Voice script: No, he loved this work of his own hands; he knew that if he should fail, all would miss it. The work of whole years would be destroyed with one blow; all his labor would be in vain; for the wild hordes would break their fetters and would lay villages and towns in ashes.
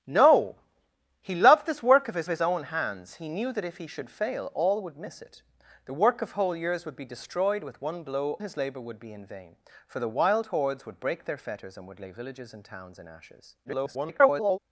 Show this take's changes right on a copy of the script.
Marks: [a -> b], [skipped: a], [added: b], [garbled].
No, he loved this work of his [added: his] own hands; he knew that if he should fail, all would miss it. The work of whole years would be destroyed with one blow; [skipped: all] his labor would be in vain; for the wild hordes would break their fetters and would lay villages and towns in ashes. [garbled]